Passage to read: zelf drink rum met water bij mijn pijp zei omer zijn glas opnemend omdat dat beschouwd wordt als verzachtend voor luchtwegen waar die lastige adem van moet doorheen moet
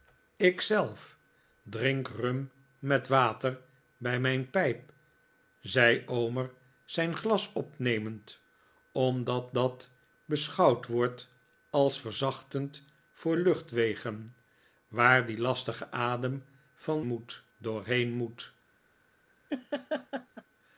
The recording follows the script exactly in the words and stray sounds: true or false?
false